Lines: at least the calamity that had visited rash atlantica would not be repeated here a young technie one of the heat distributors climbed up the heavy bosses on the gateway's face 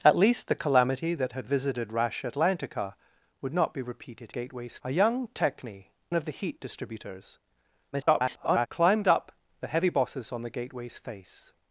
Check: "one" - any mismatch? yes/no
yes